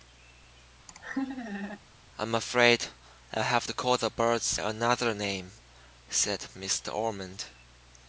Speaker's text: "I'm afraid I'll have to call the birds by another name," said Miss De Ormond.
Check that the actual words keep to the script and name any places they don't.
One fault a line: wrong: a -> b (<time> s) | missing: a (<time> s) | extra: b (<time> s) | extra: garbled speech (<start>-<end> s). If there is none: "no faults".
missing: by (4.6 s)